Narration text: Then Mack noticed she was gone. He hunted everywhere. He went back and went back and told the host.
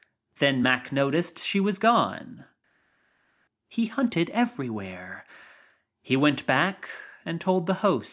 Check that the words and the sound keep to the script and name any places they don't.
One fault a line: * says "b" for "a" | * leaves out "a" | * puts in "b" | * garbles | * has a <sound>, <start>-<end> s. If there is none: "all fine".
* leaves out "went back and"